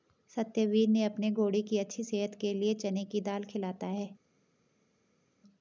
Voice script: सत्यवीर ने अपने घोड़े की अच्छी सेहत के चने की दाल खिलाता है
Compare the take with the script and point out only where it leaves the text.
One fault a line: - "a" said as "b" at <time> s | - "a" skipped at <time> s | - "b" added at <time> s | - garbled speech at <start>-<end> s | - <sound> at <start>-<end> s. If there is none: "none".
- "लिए" added at 2.5 s